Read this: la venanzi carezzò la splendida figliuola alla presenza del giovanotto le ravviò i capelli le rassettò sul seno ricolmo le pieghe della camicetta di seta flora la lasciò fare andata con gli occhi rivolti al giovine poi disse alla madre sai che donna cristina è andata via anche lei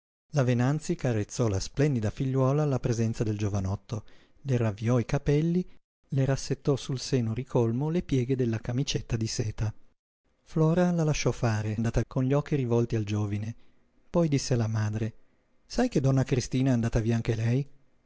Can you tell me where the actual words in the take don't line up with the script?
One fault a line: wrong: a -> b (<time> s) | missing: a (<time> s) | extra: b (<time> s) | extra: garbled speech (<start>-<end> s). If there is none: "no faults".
no faults